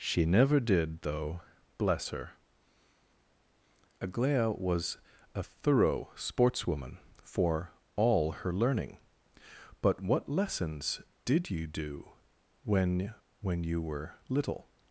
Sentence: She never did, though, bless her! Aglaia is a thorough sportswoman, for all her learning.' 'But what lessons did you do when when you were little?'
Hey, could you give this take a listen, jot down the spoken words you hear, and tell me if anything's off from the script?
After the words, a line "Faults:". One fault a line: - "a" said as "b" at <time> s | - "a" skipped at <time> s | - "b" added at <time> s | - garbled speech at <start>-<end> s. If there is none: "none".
She never did, though, bless her! Aglaia was a thorough sportswoman, for all her learning.' 'But what lessons did you do when when you were little?'
Faults:
- "is" said as "was" at 4.6 s